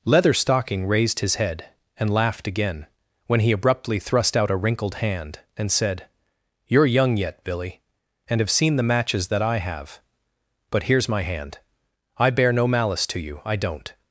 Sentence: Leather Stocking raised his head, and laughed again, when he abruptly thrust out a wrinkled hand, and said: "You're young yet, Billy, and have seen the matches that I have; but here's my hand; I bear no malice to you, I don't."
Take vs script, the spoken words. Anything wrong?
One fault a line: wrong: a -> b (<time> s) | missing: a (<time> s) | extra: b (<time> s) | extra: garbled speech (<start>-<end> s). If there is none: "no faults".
no faults